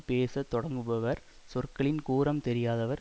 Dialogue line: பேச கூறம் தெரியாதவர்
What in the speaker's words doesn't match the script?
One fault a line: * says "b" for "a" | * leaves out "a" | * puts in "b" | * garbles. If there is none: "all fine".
* puts in "தொடங்குபவர் சொற்களின்"